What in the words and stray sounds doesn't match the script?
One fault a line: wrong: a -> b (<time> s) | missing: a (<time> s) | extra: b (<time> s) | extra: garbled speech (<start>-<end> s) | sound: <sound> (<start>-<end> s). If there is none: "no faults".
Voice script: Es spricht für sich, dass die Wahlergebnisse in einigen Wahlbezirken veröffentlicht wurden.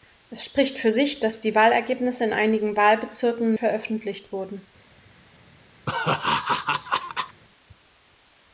sound: laugh (5.9-7.4 s)